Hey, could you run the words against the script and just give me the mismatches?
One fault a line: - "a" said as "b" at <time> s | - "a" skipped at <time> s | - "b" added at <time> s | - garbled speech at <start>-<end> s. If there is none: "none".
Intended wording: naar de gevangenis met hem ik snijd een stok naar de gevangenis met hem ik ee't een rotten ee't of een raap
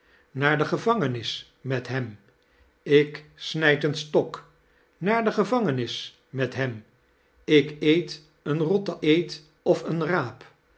none